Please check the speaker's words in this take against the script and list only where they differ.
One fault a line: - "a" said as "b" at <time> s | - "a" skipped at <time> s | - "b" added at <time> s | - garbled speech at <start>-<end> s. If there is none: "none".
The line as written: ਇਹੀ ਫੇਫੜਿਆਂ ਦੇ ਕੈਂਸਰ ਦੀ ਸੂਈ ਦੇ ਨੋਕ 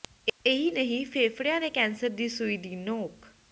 - "ਨਹੀਂ" added at 0.7 s
- "ਦੇ" said as "ਦੀ" at 2.6 s